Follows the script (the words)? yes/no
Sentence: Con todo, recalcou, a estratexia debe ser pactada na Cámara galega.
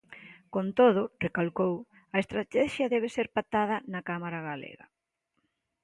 yes